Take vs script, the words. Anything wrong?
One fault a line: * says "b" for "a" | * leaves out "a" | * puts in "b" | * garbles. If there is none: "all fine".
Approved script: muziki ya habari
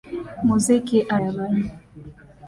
all fine